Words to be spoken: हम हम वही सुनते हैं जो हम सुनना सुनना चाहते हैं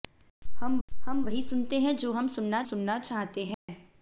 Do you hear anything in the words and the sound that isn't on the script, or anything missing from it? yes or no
yes